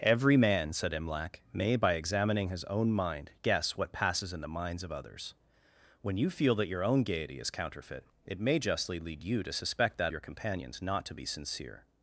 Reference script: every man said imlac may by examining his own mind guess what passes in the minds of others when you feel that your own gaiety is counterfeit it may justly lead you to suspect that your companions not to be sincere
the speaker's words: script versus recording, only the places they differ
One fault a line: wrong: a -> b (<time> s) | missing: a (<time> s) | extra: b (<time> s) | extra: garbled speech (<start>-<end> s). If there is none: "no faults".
no faults